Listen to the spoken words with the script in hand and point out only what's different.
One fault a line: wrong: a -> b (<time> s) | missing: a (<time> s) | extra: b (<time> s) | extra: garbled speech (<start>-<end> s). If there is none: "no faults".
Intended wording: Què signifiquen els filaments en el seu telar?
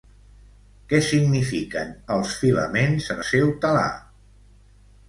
missing: el (3.2 s)